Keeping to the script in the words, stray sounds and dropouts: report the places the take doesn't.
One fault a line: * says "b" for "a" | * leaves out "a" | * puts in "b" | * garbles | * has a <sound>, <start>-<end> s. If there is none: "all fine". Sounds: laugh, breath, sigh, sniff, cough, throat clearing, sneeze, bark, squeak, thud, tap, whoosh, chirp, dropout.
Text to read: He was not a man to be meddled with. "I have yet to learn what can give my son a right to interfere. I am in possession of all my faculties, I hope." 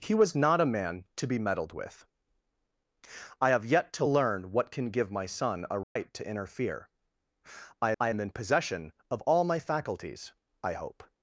* has a dropout, 5.8-6.0 s
* puts in "I"